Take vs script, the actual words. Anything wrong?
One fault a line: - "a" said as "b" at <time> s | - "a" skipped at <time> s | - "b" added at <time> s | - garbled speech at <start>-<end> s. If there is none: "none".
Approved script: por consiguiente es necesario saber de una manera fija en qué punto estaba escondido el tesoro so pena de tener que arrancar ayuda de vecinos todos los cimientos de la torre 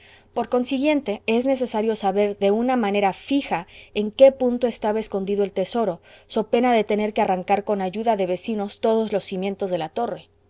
- "con" added at 7.6 s